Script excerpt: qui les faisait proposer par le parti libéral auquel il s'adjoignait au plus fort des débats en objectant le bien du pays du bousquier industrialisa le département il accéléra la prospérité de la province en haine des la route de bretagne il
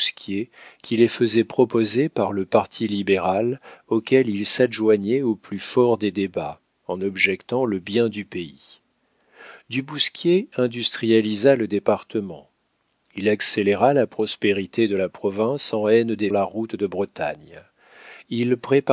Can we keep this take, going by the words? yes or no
yes